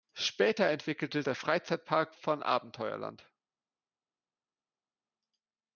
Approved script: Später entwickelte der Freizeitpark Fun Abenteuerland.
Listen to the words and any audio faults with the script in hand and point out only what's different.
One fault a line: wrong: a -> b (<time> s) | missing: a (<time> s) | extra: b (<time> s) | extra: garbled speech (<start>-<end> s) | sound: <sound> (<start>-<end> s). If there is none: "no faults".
no faults